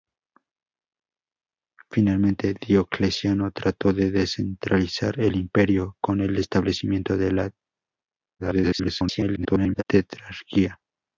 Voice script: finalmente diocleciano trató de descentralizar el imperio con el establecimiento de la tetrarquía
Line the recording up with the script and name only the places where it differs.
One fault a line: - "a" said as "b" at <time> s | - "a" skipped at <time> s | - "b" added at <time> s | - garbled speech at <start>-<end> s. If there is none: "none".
- garbled speech at 8.4-9.8 s